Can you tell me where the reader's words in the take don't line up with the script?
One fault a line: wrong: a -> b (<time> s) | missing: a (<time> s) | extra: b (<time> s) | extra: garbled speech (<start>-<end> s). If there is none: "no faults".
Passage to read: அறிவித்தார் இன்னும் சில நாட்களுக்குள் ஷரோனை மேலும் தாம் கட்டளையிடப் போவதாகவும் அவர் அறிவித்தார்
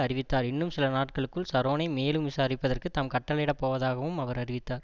extra: விசாரிப்பதற்கு (2.3 s)